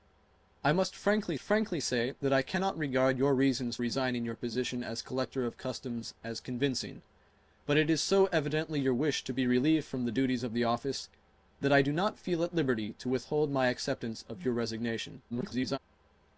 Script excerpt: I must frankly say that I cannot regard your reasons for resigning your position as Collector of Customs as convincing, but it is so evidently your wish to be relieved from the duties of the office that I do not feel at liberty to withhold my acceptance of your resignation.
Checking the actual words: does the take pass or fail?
fail